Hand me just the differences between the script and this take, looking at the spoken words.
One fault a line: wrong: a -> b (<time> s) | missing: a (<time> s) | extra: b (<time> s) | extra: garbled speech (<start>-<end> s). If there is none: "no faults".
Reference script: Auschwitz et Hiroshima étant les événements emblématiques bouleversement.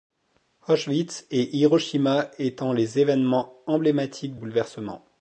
no faults